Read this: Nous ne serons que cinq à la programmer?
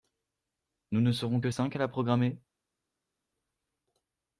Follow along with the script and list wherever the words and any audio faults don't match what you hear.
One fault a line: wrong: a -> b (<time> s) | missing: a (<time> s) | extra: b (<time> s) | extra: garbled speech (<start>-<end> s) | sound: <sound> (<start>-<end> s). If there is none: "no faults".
no faults